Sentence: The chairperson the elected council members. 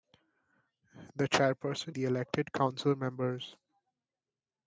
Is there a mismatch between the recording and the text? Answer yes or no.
no